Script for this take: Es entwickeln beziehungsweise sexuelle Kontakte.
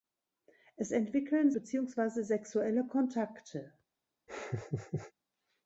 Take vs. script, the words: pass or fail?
pass